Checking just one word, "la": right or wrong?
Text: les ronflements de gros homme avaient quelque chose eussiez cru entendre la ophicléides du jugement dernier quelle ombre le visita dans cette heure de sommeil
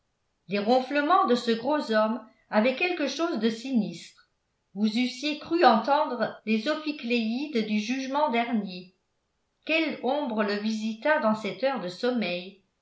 wrong